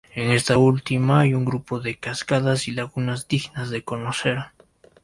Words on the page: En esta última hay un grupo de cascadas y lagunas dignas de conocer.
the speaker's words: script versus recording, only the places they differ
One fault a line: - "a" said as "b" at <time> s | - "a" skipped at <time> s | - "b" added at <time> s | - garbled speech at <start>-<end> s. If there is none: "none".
none